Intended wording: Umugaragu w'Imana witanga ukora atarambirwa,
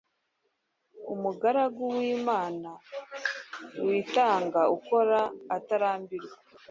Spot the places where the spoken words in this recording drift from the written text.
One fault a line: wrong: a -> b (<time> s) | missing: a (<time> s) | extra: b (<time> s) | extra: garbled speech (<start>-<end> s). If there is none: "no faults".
no faults